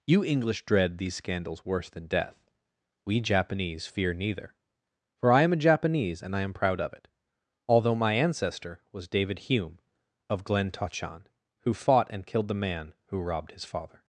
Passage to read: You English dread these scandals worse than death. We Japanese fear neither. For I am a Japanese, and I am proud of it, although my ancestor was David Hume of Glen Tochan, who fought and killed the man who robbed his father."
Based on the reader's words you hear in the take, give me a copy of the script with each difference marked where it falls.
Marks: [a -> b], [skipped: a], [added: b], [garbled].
You English dread these scandals worse than death. We Japanese fear neither. For I am a Japanese, and I am proud of it, although my ancestor was David Hume of Glen Tochan, who fought and killed the man who robbed his father."